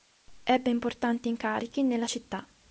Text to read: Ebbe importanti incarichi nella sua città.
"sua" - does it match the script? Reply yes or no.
no